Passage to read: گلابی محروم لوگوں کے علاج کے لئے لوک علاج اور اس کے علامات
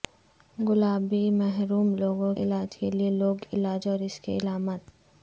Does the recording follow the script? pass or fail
fail